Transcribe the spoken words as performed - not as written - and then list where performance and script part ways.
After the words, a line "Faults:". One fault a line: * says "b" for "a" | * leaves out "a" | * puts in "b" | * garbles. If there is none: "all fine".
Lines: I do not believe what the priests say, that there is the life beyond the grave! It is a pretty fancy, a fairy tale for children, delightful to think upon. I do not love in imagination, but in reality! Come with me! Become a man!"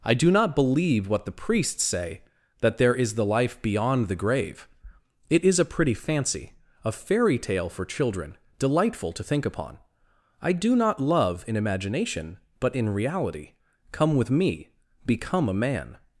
I do not believe what the priests say, that there is the life beyond the grave! It is a pretty fancy, a fairy tale for children, delightful to think upon. I do not love in imagination, but in reality! Come with me! Become a man!"
Faults:
all fine